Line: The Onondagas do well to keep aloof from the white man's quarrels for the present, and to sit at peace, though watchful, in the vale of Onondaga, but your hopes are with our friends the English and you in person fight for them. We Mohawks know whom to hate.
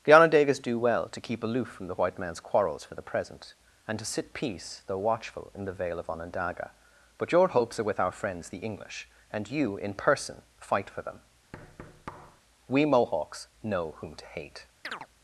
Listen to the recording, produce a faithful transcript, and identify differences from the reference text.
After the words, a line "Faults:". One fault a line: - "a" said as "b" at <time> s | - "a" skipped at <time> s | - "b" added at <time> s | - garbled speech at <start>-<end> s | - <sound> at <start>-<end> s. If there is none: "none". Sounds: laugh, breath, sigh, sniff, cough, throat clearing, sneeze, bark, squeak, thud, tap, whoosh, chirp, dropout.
The Onondagas do well to keep aloof from the white man's quarrels for the present, and to sit peace, though watchful, in the vale of Onondaga, but your hopes are with our friends the English and you in person fight for them. We Mohawks know whom to hate.
Faults:
- "at" skipped at 4.3 s
- thud at 11.5-12.4 s
- chirp at 14.8-15.1 s